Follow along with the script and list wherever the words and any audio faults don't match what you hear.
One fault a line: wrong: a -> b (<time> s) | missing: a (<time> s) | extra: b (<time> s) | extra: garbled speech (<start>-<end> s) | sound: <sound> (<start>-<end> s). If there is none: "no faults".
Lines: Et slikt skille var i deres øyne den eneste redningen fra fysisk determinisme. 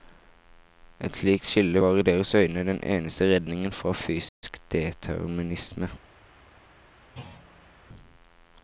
sound: dropout (4.3-4.4 s)
sound: thud (7.1-7.8 s)